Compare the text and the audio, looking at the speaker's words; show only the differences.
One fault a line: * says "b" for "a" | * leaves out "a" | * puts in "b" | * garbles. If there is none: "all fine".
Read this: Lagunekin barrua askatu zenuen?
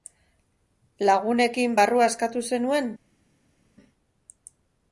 all fine